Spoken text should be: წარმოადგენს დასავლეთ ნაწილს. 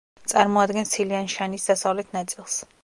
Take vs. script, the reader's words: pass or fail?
fail